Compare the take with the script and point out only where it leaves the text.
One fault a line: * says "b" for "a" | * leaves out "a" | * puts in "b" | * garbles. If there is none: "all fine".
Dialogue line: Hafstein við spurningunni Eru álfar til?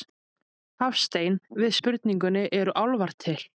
all fine